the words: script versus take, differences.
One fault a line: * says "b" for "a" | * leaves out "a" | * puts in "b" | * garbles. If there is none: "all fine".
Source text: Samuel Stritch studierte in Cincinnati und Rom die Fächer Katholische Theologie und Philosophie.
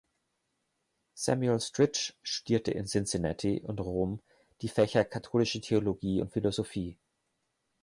all fine